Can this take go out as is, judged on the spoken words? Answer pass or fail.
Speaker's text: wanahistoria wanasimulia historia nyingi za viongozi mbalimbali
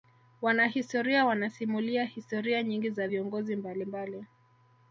pass